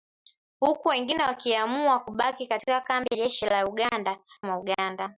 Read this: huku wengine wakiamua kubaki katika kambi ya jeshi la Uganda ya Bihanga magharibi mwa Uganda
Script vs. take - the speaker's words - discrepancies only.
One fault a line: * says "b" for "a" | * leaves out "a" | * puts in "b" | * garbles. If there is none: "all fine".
* leaves out "ya"
* leaves out "ya Bihanga magharibi"